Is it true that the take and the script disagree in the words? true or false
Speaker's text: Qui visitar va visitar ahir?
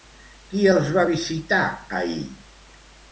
true